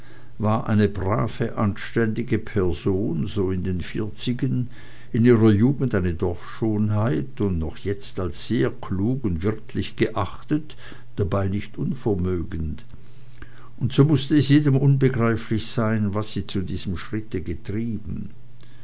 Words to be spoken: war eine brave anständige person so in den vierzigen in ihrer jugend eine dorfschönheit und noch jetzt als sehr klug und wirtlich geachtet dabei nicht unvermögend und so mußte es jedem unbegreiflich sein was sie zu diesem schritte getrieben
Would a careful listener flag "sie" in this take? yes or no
no